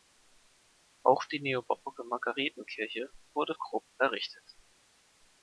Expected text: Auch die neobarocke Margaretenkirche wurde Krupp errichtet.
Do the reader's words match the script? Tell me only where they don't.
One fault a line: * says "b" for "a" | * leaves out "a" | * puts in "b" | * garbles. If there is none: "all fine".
all fine